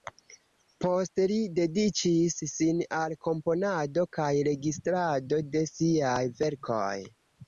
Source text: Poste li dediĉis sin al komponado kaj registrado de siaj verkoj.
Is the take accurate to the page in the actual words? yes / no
yes